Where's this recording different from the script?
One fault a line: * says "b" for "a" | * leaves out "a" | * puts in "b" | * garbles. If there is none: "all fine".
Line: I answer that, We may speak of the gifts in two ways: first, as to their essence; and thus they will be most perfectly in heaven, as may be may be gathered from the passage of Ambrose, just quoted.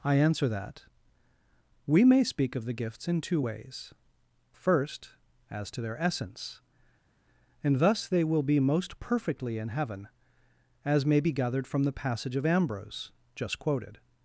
* leaves out "may be"